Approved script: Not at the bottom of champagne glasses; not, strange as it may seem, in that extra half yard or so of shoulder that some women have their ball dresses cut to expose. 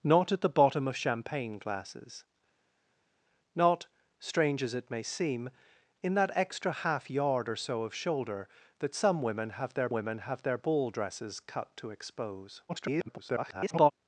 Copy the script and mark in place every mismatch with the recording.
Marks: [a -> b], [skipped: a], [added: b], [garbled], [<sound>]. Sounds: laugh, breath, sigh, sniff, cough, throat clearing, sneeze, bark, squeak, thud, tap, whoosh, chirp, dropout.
Not at the bottom of champagne glasses; not, strange as it may seem, in that extra half yard or so of shoulder that some women have their [added: women have their] ball dresses cut to expose. [garbled]